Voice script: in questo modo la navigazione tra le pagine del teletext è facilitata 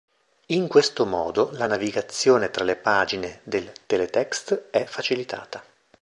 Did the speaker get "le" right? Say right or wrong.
right